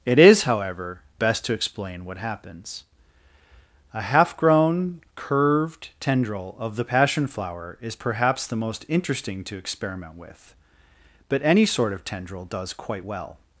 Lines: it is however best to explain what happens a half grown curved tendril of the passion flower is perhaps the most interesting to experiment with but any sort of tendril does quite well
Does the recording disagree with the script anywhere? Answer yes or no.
no